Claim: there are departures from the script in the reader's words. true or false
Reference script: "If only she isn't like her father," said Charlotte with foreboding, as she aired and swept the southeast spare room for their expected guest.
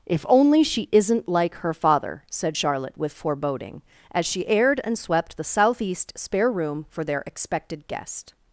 false